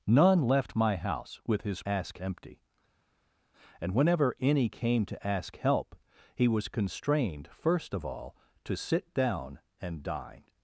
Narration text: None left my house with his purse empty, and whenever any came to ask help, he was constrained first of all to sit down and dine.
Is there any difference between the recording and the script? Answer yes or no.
yes